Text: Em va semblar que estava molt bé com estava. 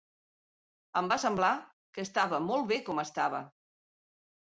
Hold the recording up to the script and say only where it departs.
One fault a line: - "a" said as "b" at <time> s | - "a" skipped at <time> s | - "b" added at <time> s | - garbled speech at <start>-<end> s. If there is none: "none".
none